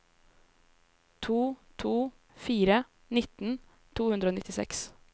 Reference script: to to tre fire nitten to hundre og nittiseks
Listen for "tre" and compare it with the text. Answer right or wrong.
wrong